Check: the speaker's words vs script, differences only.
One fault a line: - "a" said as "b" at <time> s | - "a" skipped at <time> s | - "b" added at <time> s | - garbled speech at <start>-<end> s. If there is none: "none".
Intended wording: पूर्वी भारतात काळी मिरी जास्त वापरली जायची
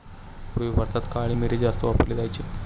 none